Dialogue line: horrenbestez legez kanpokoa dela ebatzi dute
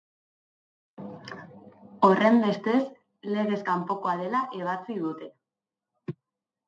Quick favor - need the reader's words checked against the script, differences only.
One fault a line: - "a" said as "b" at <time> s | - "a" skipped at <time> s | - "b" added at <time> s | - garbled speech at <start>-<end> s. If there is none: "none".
none